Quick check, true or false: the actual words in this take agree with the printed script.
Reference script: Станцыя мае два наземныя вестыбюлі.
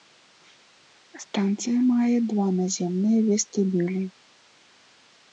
true